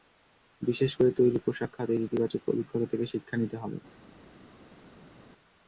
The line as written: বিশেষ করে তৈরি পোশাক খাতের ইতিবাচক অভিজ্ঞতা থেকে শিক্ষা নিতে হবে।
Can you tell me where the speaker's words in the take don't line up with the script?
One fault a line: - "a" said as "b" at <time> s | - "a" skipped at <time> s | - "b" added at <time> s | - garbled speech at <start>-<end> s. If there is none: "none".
none